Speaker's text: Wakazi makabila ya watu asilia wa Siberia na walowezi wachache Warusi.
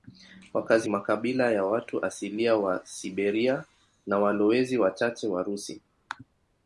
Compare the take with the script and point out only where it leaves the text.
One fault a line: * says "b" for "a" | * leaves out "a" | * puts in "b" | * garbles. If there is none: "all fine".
all fine